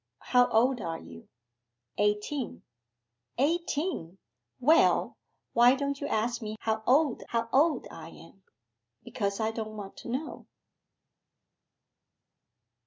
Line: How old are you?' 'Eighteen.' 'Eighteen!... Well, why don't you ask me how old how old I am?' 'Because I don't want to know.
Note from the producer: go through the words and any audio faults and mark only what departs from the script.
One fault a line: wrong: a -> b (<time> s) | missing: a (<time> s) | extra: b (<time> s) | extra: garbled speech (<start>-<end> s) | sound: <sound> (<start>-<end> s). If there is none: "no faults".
no faults